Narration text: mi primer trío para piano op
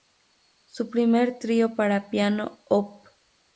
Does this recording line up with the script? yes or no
no